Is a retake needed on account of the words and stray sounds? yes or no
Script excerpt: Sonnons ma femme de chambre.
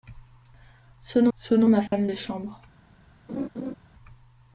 yes